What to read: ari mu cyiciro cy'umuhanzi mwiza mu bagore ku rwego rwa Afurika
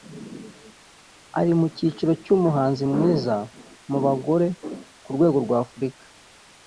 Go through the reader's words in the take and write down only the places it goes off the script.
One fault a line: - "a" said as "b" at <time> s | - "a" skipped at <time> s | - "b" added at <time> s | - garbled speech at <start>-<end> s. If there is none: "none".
none